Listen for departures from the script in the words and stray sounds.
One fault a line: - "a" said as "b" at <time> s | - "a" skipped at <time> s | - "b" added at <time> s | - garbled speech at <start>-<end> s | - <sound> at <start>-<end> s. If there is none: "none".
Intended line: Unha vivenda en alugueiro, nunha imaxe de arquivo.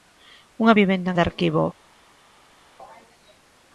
- "alugueiro nunha imaxe" skipped at 1.2 s